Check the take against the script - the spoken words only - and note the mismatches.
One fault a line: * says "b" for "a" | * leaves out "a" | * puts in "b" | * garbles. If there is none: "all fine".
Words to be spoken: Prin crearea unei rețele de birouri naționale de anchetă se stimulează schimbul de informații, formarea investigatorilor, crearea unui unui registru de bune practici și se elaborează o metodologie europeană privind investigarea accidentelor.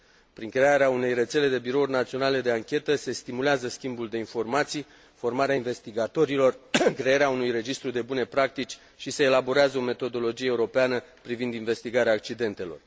* leaves out "unui"